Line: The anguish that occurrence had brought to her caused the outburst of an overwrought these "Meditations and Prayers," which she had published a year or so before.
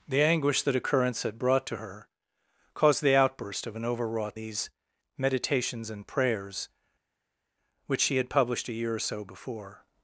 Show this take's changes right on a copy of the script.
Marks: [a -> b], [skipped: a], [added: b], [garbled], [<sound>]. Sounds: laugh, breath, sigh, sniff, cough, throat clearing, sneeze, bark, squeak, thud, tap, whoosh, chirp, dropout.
The anguish that occurrence had brought to her caused the outburst of an overwrought these "Meditations and Prayers," which she had published a year or so before.